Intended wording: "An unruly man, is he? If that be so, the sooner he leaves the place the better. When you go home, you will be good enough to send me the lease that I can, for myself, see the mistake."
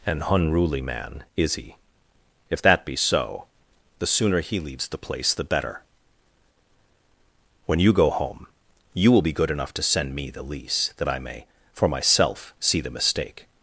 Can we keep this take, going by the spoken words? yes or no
no